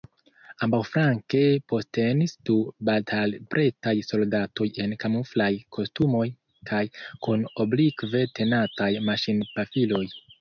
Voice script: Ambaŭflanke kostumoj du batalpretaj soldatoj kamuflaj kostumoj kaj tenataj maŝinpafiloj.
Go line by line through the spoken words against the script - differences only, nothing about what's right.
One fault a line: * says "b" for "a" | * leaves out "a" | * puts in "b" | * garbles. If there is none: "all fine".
* says "postenis" for "kostumoj"
* puts in "en"
* puts in "kun oblikve"